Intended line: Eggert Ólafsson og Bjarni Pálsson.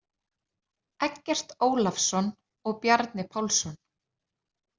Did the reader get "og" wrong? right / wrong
right